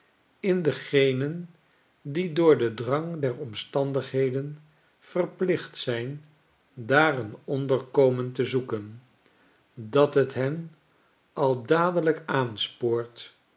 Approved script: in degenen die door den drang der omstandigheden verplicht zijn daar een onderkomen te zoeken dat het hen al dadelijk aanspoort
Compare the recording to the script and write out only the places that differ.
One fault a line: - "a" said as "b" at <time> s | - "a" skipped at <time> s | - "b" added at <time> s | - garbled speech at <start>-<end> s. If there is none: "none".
none